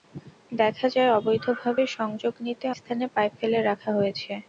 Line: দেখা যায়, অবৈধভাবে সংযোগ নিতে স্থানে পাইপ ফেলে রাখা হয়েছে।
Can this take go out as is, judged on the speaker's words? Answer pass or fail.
pass